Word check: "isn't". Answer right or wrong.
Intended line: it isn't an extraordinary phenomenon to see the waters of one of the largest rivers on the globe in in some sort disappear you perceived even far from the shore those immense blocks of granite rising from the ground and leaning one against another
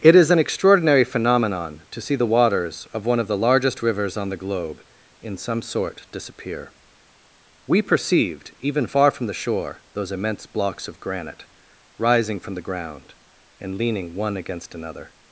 wrong